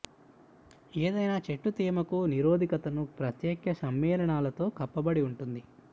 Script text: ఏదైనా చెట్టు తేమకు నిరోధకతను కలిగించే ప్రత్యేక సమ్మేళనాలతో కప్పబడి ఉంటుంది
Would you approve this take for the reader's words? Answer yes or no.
no